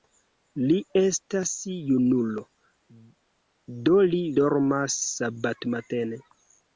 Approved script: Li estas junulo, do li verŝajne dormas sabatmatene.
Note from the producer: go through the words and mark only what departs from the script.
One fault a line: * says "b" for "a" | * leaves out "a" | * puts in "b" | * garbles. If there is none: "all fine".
* leaves out "verŝajne"